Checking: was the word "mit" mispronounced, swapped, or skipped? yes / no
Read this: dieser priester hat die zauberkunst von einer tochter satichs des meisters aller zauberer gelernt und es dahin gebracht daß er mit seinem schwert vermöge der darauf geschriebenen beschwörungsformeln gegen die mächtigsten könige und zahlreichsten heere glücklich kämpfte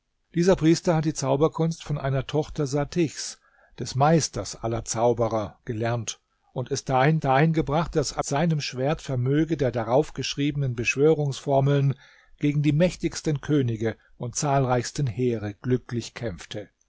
yes